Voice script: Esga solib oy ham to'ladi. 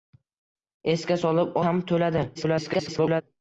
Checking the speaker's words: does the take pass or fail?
fail